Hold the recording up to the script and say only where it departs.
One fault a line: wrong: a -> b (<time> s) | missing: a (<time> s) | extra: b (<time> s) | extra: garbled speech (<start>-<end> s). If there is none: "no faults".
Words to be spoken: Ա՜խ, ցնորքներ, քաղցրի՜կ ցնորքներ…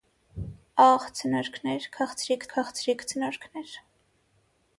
extra: քաղցրի՜կ (2.6 s)